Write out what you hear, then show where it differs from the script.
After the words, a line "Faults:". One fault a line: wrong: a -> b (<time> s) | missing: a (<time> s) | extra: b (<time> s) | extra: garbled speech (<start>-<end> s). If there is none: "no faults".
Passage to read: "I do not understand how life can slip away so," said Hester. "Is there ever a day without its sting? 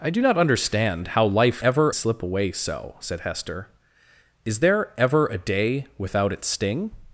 "I do not understand how life ever slip away so," said Hester. "Is there ever a day without its sting?
Faults:
wrong: can -> ever (1.6 s)